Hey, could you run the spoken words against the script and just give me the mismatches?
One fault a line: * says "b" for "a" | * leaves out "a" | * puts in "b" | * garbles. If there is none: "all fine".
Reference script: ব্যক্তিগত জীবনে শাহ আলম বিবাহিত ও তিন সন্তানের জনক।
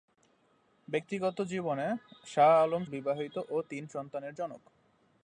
all fine